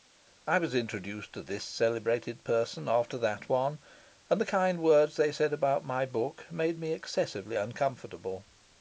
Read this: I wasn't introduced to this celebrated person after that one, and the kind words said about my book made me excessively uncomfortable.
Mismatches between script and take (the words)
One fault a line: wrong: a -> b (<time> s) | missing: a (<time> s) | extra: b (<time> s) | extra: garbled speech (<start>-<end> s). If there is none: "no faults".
wrong: wasn't -> was (0.6 s)
extra: they (5.2 s)